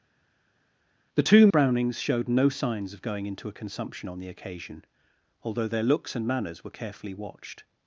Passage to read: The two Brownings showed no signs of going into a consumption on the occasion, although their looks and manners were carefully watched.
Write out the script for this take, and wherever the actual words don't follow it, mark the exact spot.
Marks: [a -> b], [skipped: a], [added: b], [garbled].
The two Brownings showed no signs of going into a consumption on the occasion, although their looks and manners were carefully watched.